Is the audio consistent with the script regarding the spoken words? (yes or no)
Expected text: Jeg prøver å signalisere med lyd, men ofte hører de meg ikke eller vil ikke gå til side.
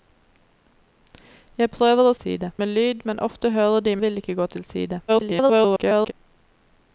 no